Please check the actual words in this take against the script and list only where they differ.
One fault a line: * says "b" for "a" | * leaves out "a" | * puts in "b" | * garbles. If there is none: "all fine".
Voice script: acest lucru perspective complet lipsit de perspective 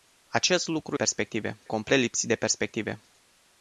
all fine